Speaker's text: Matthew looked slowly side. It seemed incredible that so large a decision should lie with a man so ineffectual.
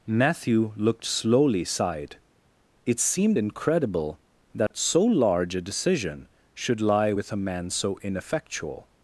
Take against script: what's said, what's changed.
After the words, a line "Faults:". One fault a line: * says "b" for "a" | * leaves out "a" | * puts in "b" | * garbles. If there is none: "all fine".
Matthew looked slowly side. It seemed incredible that so large a decision should lie with a man so ineffectual.
Faults:
all fine